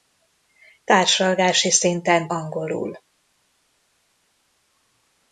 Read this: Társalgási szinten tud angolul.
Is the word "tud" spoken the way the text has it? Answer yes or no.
no